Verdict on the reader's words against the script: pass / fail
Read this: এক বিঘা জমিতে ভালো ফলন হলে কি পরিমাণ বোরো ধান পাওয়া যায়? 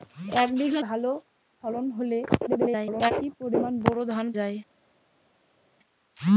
fail